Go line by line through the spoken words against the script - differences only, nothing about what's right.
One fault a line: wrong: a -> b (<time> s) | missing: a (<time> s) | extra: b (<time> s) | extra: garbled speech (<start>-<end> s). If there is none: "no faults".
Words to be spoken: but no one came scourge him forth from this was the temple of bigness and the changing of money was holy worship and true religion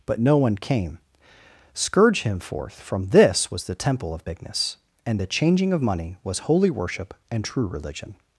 no faults